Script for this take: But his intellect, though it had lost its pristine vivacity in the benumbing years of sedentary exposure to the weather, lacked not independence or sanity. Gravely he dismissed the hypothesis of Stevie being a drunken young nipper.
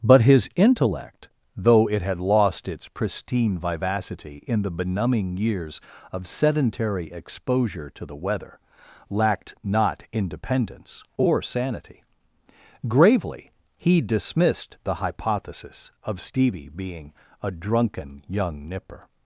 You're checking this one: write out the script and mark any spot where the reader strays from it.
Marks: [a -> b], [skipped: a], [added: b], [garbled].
But his intellect, though it had lost its pristine vivacity in the benumbing years of sedentary exposure to the weather, lacked not independence or sanity. Gravely he dismissed the hypothesis of Stevie being a drunken young nipper.